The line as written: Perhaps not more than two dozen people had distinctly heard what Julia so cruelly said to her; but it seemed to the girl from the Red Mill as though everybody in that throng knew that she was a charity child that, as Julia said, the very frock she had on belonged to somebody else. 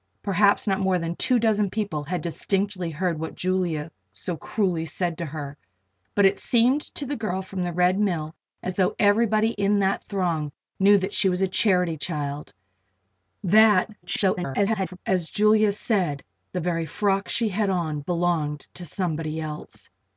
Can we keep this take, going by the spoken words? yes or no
no